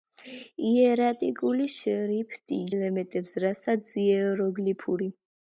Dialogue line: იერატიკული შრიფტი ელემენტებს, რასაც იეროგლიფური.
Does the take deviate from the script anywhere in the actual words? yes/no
no